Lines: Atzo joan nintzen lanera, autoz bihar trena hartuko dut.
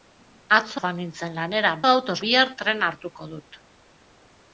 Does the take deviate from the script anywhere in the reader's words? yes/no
no